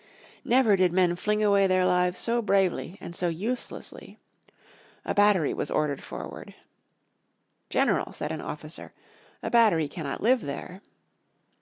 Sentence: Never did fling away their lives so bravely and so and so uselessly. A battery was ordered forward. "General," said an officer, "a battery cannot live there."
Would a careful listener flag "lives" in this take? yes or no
no